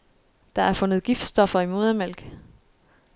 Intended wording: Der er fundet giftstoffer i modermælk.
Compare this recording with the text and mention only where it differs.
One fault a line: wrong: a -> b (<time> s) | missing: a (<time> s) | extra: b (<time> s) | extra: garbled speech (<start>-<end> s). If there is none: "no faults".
no faults